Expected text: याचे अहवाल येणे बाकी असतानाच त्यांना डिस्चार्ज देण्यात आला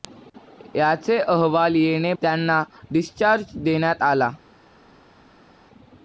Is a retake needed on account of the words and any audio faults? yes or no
yes